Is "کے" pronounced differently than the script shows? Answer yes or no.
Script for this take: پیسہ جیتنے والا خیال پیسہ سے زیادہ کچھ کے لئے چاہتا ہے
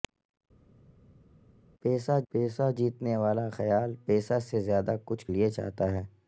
yes